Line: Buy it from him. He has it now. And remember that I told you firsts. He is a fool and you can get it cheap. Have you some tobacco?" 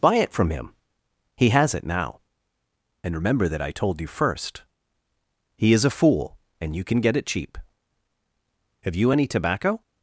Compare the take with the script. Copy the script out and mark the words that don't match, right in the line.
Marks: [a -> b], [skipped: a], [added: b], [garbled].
Buy it from him. He has it now. And remember that I told you [firsts. -> first] He is a fool and you can get it cheap. Have you [some -> any] tobacco?"